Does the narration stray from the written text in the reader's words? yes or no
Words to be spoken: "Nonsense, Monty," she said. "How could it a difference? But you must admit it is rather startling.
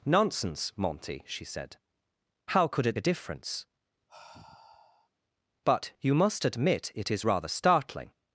no